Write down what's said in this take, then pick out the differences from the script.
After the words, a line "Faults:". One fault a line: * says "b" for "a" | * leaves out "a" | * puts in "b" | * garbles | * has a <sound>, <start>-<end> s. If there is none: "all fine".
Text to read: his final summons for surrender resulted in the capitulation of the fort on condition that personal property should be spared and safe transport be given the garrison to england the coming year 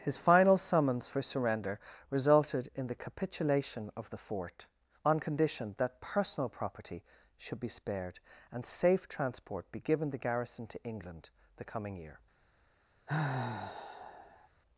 his final summons for surrender resulted in the capitulation of the fort on condition that personal property should be spared and safe transport be given the garrison to england the coming year
Faults:
* has a sigh, 13.1-14.5 s